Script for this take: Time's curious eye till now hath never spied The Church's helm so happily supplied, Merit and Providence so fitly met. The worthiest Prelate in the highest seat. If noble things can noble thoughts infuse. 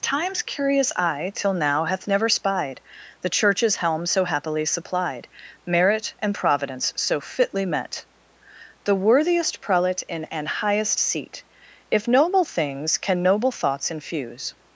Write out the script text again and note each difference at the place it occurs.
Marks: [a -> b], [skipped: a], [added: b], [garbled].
Time's curious eye till now hath never spied The Church's helm so happily supplied, Merit and Providence so fitly met. The worthiest Prelate in [the -> an] highest seat. If noble things can noble thoughts infuse.